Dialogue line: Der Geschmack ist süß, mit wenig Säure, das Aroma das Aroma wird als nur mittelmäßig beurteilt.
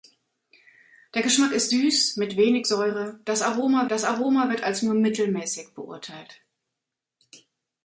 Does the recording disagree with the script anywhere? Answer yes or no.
no